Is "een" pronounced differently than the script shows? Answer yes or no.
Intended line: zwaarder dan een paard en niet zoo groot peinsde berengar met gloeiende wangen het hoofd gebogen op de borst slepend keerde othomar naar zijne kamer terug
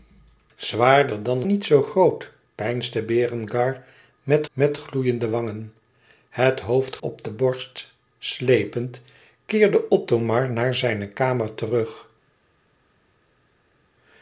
yes